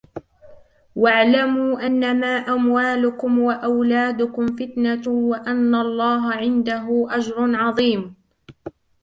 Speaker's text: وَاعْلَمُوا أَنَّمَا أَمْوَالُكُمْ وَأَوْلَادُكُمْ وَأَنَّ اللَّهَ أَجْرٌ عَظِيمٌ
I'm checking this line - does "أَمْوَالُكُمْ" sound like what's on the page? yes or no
yes